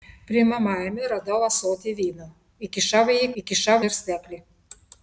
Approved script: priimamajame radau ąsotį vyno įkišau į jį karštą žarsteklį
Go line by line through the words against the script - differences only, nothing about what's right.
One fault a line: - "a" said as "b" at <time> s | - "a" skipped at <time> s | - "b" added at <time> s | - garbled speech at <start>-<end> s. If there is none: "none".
- "karštą" said as "įkišau" at 3.4 s